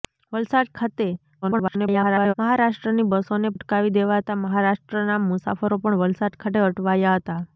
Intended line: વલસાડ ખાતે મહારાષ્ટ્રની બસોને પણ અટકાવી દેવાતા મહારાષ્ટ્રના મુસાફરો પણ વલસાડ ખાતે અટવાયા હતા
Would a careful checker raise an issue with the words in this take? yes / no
yes